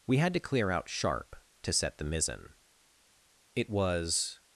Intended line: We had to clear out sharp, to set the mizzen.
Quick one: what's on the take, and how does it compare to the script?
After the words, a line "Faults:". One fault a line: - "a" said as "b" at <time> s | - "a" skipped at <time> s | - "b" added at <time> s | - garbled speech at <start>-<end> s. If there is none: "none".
We had to clear out sharp, to set the mizzen. It was
Faults:
- "It was" added at 3.5 s